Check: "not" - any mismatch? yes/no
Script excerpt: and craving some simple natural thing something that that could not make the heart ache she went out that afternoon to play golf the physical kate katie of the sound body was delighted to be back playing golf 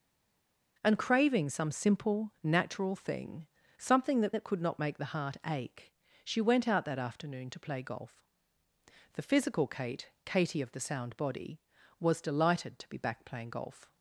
no